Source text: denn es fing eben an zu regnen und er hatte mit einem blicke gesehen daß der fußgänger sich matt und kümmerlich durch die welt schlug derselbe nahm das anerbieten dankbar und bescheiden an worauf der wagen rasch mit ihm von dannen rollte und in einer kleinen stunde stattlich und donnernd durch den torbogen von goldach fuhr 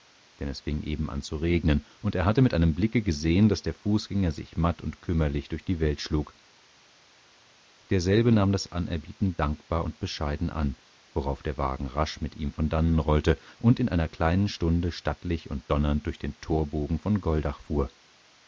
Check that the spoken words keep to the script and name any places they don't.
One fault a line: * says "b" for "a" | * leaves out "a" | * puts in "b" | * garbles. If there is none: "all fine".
all fine